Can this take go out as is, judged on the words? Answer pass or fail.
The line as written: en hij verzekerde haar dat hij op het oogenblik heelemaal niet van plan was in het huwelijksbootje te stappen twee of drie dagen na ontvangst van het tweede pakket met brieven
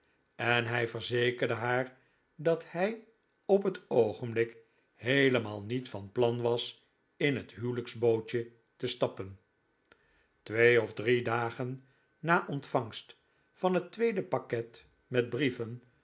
pass